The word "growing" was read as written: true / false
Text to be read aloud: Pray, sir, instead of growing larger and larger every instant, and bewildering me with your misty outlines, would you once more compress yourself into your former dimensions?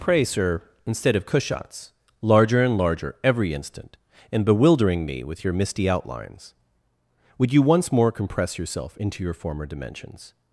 false